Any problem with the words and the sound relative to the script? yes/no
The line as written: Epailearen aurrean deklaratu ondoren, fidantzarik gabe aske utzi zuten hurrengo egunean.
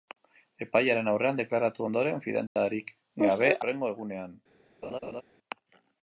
yes